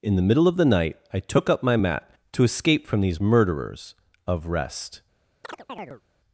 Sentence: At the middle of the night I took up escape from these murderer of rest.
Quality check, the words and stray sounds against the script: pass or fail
fail